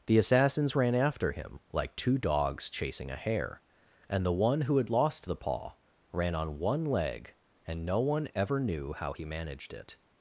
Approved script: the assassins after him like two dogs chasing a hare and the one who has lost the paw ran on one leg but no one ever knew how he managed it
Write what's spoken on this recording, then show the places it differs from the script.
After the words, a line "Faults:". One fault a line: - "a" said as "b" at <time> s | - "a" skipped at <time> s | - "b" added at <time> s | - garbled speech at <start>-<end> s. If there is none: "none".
the assassins ran after him like two dogs chasing a hare and the one who had lost the paw ran on one leg and no one ever knew how he managed it
Faults:
- "ran" added at 0.8 s
- "has" said as "had" at 4.8 s
- "but" said as "and" at 7.7 s